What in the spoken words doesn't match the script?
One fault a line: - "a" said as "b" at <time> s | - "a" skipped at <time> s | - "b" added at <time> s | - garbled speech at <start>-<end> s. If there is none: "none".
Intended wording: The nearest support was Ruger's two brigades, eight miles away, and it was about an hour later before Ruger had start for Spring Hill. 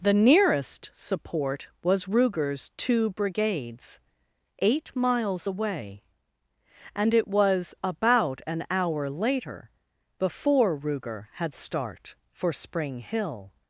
none